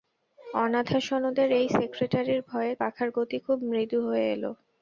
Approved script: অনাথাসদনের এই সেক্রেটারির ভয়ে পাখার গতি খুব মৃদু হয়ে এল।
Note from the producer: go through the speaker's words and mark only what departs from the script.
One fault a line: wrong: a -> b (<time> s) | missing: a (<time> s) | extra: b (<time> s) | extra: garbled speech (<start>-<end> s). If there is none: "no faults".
no faults